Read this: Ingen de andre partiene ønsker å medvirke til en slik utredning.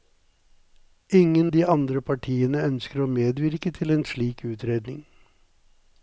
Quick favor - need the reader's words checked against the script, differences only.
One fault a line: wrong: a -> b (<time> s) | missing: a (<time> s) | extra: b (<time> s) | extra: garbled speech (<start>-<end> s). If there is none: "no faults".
no faults